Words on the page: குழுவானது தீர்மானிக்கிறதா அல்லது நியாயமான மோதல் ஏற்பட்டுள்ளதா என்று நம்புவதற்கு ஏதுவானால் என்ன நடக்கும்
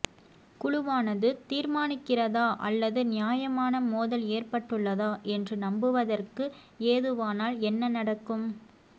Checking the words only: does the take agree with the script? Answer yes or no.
yes